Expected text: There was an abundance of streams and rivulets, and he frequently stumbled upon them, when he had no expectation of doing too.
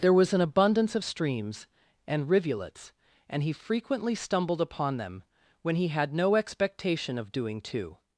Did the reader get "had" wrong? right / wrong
right